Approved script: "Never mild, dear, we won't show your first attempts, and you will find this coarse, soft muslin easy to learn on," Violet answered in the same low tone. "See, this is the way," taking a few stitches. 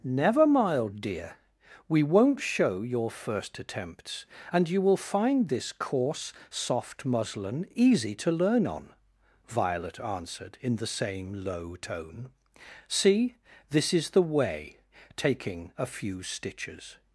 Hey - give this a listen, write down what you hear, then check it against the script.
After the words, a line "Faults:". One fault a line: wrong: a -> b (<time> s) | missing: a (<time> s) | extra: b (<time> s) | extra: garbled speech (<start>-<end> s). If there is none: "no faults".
"Never mild, dear, we won't show your first attempts, and you will find this coarse, soft muslin easy to learn on," Violet answered in the same low tone. "See, this is the way," taking a few stitches.
Faults:
no faults